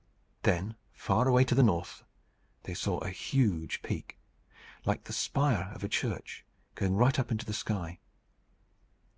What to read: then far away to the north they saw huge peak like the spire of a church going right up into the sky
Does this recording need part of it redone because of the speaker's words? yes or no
yes